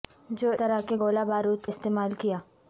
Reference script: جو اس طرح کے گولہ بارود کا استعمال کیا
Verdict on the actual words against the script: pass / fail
fail